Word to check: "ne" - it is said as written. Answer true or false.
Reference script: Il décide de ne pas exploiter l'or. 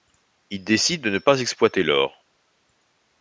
true